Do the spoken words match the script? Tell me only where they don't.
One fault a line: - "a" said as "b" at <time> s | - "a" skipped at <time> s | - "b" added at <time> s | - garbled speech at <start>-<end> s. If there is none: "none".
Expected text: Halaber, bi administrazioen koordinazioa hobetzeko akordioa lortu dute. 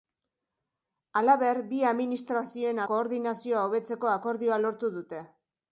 none